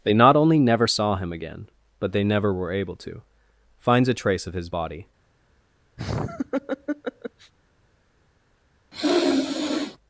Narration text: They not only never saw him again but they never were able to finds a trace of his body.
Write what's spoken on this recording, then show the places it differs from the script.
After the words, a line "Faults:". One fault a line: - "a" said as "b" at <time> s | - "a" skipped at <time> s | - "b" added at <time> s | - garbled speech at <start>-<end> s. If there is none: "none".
They not only never saw him again but they never were able to finds a trace of his body.
Faults:
none